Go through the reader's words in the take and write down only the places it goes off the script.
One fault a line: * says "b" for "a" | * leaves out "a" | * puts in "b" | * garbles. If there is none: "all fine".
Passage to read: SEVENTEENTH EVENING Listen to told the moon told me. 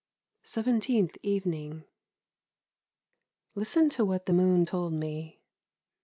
* says "what" for "told"